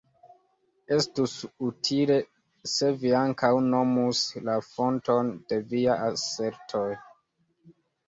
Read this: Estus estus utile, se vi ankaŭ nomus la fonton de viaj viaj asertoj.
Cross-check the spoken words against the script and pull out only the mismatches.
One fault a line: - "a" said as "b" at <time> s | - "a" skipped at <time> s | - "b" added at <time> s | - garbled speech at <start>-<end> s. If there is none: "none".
- "estus" skipped at 1.4 s
- "viaj" skipped at 6.0 s